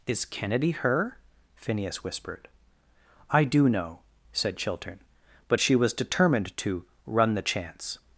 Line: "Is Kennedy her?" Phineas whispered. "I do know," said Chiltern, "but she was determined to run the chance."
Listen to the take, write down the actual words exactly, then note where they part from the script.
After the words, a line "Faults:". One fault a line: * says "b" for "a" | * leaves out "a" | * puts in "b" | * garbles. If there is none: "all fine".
"Is Kennedy her?" Phineas whispered. "I do know," said Chiltern, "but she was determined to run the chance."
Faults:
all fine